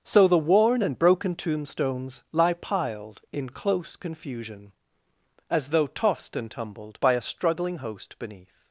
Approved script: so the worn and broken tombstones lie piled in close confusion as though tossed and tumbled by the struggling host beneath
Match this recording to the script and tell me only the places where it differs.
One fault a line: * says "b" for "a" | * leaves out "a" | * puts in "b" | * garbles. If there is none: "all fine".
* says "a" for "the"